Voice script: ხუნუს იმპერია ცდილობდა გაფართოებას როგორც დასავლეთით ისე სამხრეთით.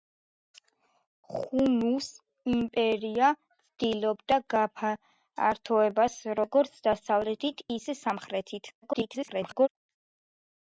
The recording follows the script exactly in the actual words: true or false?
false